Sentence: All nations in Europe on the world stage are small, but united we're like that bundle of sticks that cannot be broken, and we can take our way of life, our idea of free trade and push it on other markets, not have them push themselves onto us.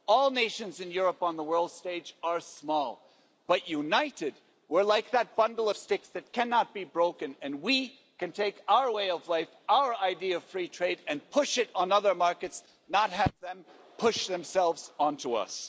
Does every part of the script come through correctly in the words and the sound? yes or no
yes